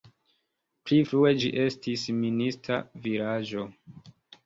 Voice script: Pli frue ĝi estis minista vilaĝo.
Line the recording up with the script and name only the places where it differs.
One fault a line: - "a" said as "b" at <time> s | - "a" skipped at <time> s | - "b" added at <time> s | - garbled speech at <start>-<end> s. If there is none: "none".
none